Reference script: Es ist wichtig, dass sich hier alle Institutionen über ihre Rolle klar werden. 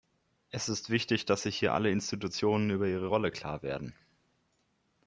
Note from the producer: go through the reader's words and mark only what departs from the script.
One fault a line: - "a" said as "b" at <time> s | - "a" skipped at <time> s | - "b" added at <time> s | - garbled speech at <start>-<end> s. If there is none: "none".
none